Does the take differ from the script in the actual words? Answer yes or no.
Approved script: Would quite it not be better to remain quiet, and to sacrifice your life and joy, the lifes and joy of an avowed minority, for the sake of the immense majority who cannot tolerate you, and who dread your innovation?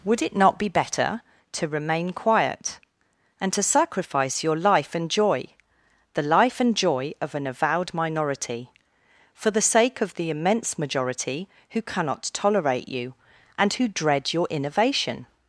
yes